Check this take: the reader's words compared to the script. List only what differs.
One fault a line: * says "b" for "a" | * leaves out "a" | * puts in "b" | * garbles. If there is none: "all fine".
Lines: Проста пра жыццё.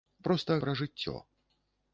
all fine